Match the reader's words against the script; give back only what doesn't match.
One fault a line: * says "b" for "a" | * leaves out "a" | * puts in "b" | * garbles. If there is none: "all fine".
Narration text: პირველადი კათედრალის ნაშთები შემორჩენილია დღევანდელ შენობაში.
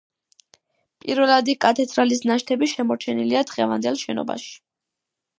all fine